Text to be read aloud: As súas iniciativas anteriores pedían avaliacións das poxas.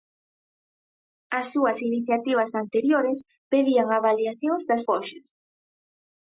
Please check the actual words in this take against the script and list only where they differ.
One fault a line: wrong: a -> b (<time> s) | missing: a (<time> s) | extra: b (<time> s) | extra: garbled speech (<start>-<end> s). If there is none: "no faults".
no faults